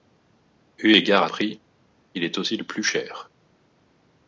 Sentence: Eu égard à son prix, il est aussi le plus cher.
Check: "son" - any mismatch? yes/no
yes